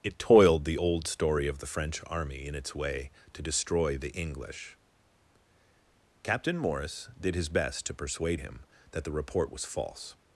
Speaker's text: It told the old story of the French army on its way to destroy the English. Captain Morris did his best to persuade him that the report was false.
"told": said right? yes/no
no